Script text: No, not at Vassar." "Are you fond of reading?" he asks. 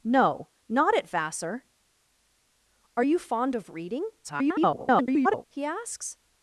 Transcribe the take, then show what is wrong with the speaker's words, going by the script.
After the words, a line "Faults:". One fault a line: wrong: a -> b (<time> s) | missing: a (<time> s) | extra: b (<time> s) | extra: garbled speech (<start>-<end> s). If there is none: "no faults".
No, not at Vassar." "Are you fond of reading?" [garbled] he asks.
Faults:
extra: garbled speech (4.2-5.4 s)